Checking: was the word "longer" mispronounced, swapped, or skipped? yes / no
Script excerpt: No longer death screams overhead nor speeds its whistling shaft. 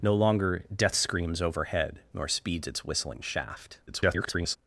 no